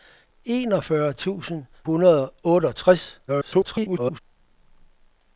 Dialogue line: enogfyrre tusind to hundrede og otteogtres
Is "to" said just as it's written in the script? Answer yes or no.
no